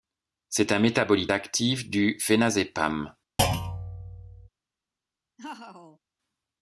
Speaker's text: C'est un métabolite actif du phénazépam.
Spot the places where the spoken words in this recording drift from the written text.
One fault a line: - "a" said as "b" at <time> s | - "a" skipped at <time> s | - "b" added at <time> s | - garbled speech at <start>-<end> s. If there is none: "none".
none